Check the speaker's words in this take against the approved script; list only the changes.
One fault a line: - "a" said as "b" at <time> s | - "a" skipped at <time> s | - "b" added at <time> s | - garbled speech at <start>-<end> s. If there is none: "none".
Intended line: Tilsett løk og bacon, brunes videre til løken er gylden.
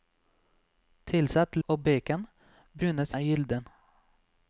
- "løk" skipped at 1.6 s
- "videre til løken" skipped at 3.1 s